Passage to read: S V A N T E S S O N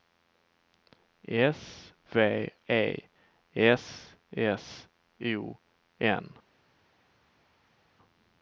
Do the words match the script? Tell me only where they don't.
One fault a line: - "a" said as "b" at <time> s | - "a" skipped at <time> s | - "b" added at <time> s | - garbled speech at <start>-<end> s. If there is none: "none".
- "A N T" skipped at 2.5 s